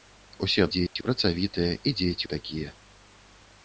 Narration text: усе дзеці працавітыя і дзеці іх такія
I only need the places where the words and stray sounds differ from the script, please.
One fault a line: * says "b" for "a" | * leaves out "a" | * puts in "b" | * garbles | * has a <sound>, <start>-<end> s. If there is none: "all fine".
* has a dropout, 0.9-1.0 s